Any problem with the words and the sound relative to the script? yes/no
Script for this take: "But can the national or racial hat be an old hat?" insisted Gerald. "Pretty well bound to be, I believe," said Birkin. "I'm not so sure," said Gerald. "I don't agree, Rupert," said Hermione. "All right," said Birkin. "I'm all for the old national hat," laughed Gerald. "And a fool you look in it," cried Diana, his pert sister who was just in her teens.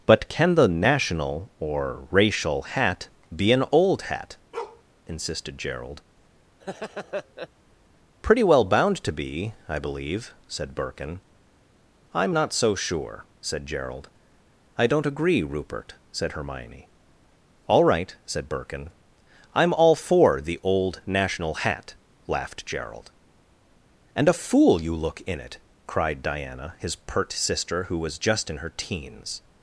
yes